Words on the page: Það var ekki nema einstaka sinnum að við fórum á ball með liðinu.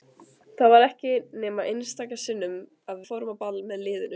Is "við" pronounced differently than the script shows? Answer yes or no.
yes